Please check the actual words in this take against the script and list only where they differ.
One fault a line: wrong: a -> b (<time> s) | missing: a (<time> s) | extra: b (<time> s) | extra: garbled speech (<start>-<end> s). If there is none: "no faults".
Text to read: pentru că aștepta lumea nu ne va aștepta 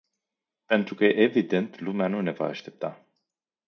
wrong: aștepta -> evident (1.0 s)